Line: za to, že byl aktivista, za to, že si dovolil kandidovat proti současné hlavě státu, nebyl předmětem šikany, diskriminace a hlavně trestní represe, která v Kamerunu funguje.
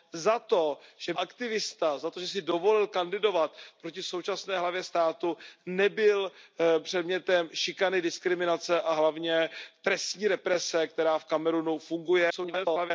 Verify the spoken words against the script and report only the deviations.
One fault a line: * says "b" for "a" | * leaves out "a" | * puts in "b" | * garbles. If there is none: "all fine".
* leaves out "byl"
* garbles